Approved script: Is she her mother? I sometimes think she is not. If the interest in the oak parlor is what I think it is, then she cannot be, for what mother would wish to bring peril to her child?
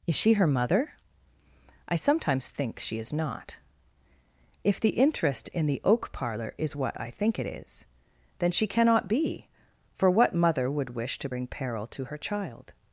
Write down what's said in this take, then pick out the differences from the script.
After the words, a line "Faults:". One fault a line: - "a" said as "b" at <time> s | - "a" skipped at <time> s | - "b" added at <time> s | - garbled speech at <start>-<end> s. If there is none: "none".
Is she her mother? I sometimes think she is not. If the interest in the oak parlor is what I think it is, then she cannot be, for what mother would wish to bring peril to her child?
Faults:
none